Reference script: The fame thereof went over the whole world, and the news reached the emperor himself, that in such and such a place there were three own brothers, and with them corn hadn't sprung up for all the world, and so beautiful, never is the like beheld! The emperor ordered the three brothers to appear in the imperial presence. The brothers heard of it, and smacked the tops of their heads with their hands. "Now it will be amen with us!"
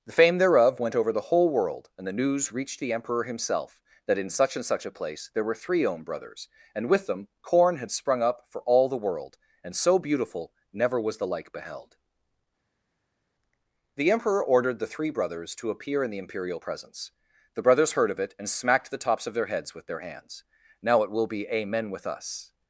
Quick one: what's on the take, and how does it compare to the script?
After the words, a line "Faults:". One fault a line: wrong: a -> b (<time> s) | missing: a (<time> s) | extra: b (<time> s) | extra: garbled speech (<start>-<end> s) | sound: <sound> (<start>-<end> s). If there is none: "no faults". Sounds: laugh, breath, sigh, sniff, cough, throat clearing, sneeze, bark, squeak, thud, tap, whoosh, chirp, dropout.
The fame thereof went over the whole world, and the news reached the emperor himself, that in such and such a place there were three own brothers, and with them corn had sprung up for all the world, and so beautiful, never was the like beheld! The emperor ordered the three brothers to appear in the imperial presence. The brothers heard of it, and smacked the tops of their heads with their hands. "Now it will be amen with us!"
Faults:
wrong: hadn't -> had (7.8 s)
wrong: is -> was (11.0 s)